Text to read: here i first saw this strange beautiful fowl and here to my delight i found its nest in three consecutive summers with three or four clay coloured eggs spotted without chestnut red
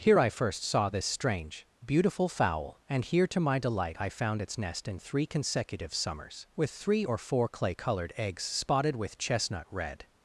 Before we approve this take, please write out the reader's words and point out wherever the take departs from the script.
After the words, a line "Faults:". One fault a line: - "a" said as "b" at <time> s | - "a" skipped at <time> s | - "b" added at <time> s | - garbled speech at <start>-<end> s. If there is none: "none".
here i first saw this strange beautiful fowl and here to my delight i found its nest in three consecutive summers with three or four clay coloured eggs spotted with chestnut red
Faults:
- "without" said as "with" at 9.0 s